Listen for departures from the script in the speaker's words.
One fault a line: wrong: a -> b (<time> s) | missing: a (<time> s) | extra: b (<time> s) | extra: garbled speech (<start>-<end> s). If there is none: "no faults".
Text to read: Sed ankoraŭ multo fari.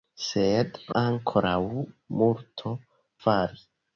no faults